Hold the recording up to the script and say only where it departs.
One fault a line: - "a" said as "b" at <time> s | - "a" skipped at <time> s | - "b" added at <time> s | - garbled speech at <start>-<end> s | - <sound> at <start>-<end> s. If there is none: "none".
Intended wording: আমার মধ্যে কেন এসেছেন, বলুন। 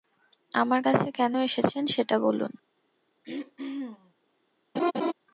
- "মধ্যে" said as "কাছে" at 0.8 s
- "সেটা" added at 1.9 s
- throat clearing at 3.2-4.1 s
- laugh at 4.7-5.1 s